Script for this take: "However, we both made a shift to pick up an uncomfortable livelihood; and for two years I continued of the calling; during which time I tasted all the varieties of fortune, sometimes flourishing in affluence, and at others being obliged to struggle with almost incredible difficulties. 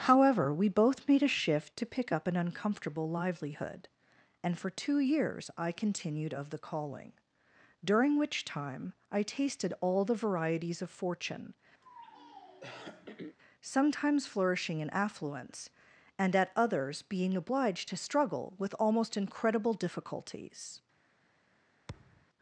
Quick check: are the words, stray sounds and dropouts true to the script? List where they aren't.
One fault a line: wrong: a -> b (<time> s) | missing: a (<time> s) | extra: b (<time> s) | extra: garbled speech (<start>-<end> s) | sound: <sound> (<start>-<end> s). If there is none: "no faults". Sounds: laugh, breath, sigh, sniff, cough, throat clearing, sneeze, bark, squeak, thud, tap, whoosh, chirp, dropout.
sound: throat clearing (11.8-13.4 s)
sound: thud (21.9-22.3 s)